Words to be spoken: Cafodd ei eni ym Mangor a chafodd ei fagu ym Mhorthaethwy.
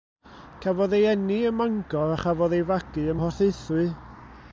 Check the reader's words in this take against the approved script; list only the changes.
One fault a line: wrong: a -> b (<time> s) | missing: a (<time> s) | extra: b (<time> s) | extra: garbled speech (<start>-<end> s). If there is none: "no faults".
no faults